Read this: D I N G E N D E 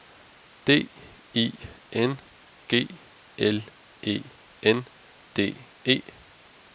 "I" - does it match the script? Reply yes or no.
yes